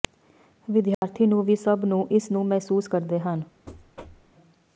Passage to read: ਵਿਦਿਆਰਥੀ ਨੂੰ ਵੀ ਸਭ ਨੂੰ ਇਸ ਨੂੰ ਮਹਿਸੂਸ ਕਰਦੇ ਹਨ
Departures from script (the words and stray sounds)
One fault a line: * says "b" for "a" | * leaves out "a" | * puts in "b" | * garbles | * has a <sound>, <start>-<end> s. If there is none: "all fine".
* has a dropout, 0.9-1.0 s
* has a thud, 3.7-4.3 s